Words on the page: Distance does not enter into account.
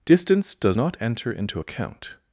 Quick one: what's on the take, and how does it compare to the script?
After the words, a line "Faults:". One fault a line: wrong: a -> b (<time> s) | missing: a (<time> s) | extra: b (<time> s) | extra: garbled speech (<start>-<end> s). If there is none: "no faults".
Distance does not enter into account.
Faults:
no faults